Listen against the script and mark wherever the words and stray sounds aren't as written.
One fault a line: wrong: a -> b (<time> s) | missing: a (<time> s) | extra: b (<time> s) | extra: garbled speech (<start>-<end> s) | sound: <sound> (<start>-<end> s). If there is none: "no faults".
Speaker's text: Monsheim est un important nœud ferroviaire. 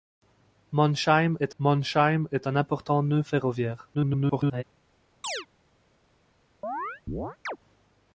extra: monsheim est (1.6 s)
extra: garbled speech (3.9-4.6 s)
sound: chirp (5.2-5.5 s)
sound: chirp (6.6-7.6 s)